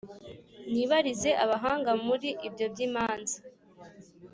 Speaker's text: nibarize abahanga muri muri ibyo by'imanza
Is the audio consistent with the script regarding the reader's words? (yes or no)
no